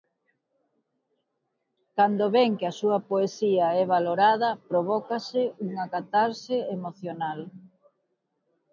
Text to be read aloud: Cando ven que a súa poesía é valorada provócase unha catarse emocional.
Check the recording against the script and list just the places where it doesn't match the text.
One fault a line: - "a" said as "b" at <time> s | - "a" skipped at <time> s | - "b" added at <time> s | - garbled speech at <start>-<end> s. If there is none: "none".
none